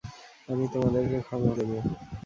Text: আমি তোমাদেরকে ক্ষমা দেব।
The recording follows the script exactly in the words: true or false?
true